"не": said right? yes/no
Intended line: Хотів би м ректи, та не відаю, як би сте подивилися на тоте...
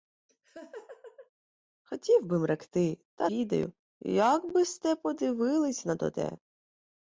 no